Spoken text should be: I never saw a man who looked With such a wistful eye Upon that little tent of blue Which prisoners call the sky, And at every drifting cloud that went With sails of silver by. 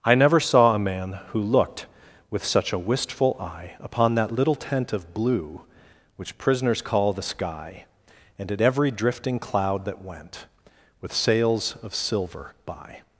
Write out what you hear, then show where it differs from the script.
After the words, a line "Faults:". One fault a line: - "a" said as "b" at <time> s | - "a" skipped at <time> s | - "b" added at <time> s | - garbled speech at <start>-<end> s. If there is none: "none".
I never saw a man who looked With such a wistful eye Upon that little tent of blue Which prisoners call the sky, And at every drifting cloud that went With sails of silver by.
Faults:
none